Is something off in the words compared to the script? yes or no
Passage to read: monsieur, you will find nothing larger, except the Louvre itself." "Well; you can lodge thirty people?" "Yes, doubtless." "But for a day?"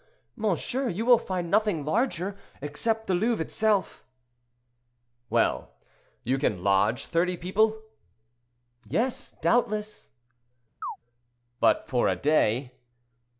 no